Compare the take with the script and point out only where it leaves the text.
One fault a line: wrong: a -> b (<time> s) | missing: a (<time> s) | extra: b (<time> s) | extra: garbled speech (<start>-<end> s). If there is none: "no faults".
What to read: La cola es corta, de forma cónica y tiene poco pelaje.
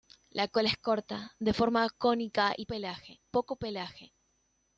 wrong: tiene -> pelaje (2.6 s)